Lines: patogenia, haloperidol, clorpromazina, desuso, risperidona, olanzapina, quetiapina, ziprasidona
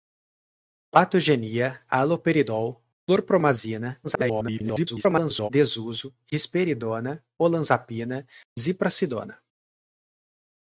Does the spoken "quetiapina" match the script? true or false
false